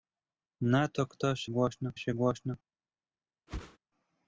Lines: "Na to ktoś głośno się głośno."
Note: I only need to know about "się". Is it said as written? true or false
true